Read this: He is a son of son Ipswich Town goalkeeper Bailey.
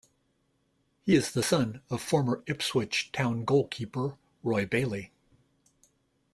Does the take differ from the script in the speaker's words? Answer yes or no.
yes